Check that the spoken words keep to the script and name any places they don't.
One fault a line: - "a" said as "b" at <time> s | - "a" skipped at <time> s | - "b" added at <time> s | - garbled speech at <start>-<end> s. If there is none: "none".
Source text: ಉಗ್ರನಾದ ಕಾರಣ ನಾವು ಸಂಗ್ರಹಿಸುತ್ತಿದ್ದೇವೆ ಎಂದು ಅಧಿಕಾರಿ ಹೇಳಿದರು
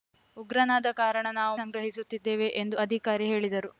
none